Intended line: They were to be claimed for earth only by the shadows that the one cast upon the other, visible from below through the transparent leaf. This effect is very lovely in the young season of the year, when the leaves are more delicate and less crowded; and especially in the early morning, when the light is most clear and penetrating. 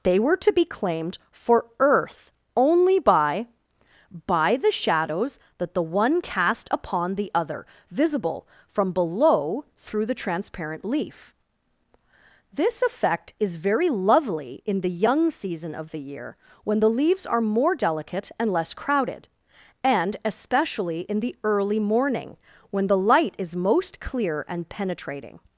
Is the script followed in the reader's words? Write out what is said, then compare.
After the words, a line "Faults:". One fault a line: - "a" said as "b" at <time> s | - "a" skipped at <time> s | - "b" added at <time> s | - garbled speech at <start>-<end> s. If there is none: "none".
They were to be claimed for earth only by by the shadows that the one cast upon the other, visible from below through the transparent leaf. This effect is very lovely in the young season of the year, when the leaves are more delicate and less crowded; and especially in the early morning, when the light is most clear and penetrating.
Faults:
- "by" added at 4.3 s